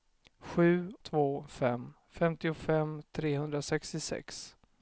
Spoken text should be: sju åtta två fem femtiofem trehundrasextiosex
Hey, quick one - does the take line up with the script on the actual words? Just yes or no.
no